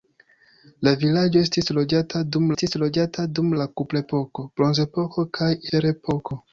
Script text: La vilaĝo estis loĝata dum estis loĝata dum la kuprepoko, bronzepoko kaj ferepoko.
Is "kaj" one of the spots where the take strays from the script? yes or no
no